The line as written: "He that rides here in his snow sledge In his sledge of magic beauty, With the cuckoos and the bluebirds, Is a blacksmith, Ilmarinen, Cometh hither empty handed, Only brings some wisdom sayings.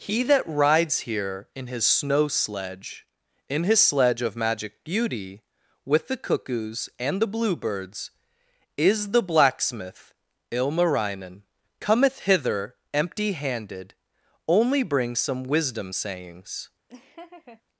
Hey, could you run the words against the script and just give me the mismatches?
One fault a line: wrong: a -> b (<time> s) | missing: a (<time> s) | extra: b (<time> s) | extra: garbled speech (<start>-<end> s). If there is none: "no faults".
wrong: a -> the (9.1 s)